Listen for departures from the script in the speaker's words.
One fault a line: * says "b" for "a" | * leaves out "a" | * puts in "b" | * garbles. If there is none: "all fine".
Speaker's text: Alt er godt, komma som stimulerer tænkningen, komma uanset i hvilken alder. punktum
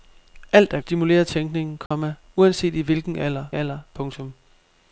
* leaves out "godt komma som"
* puts in "alder"